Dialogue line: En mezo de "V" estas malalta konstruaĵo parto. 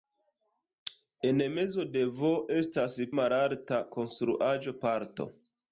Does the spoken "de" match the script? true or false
true